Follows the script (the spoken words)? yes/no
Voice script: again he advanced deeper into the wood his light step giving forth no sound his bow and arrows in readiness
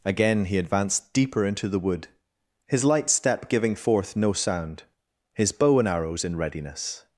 yes